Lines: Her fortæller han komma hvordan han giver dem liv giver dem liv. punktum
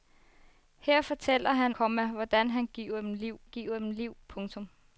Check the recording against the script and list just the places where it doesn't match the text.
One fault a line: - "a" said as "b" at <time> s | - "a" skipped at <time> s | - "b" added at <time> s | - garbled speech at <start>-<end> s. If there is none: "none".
none